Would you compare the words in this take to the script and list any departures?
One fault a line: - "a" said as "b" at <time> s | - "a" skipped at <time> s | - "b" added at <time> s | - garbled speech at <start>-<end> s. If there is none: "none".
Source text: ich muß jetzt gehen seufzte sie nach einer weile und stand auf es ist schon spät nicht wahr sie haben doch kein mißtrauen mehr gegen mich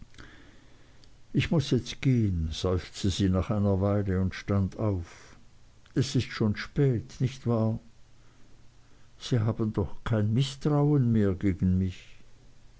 none